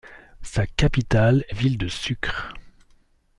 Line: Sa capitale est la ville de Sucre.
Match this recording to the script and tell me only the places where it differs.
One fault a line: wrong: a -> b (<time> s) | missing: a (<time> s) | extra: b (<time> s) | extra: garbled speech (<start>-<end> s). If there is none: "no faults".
missing: la (1.6 s)